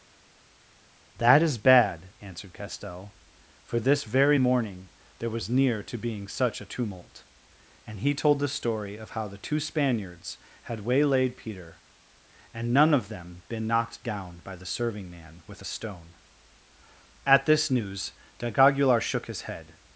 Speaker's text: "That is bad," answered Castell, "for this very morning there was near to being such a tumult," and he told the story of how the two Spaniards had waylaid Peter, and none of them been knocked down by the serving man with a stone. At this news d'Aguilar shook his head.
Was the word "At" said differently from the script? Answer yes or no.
no